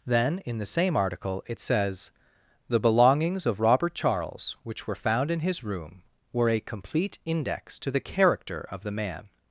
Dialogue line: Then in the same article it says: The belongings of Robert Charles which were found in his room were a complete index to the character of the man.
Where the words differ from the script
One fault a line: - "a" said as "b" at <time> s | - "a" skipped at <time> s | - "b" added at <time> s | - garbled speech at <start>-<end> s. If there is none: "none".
none